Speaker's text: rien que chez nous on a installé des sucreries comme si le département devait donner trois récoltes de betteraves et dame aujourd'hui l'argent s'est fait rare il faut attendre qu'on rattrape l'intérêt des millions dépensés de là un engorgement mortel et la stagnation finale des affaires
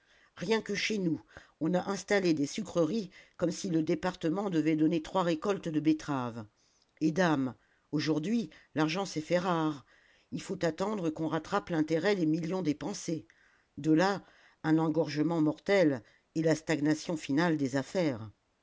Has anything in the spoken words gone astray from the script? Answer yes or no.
no